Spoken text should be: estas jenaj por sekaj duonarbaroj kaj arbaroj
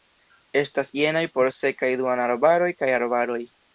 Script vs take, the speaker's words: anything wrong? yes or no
no